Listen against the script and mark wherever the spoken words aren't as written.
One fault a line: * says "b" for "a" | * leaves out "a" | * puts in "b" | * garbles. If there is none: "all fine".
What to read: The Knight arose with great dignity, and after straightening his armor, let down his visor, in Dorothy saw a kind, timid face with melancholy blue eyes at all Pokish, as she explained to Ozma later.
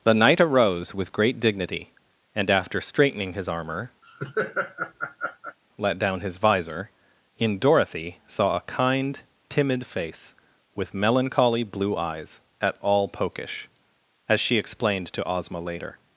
all fine